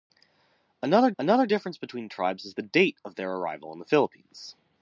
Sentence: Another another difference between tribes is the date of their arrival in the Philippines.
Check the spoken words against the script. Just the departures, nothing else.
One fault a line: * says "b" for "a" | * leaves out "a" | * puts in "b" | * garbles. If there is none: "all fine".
all fine